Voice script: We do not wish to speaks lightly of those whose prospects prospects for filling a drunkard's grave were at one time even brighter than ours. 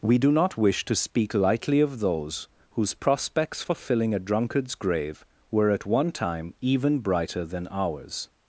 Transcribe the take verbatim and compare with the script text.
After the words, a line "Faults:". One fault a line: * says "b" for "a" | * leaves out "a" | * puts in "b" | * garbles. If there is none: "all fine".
We do not wish to speak lightly of those whose prospects for filling a drunkard's grave were at one time even brighter than ours.
Faults:
* says "speak" for "speaks"
* leaves out "prospects"